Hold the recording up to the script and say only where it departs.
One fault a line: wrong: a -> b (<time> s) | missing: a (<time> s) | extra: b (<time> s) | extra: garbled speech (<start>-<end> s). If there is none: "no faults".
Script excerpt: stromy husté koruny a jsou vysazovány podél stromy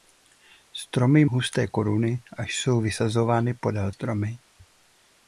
no faults